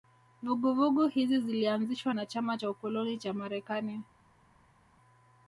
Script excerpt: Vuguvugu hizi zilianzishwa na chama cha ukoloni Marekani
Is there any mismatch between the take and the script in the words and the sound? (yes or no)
yes